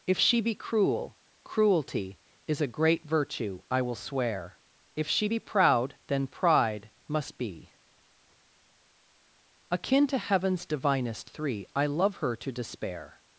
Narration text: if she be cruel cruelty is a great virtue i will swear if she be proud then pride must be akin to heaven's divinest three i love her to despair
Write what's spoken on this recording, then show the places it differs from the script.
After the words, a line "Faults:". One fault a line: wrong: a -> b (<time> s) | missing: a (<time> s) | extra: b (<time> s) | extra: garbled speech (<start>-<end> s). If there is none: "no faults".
if she be cruel cruelty is a great virtue i will swear if she be proud then pride must be akin to heaven's divinest three i love her to despair
Faults:
no faults